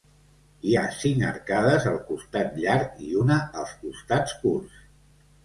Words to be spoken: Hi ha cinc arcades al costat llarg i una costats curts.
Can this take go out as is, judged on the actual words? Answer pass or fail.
fail